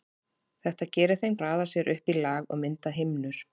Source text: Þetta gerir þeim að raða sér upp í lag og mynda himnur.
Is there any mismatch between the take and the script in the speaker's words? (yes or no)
no